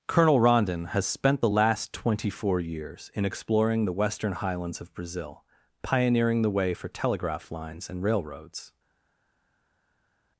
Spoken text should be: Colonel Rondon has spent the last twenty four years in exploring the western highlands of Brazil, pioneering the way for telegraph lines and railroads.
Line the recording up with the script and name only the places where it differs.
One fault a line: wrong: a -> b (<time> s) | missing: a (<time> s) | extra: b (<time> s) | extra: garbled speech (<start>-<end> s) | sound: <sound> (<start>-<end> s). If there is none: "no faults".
no faults